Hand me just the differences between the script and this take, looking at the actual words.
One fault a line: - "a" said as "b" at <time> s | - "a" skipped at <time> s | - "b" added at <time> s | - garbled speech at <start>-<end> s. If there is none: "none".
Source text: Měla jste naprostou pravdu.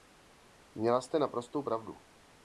none